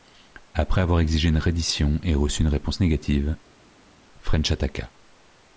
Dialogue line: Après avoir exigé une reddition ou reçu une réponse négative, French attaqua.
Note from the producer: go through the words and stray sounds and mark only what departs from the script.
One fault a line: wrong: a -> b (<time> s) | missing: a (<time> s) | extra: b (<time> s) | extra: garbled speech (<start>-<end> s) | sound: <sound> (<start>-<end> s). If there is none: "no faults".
wrong: ou -> et (2.0 s)